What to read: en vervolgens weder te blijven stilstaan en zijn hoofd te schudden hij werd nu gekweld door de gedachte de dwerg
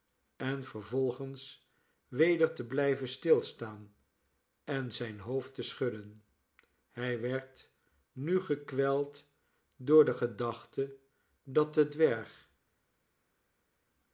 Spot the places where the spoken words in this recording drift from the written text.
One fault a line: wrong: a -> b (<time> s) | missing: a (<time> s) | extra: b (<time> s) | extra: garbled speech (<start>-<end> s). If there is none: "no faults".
extra: dat (11.4 s)